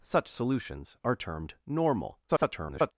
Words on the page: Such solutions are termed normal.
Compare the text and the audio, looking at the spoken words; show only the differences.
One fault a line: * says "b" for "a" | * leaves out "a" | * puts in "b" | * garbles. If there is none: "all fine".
* garbles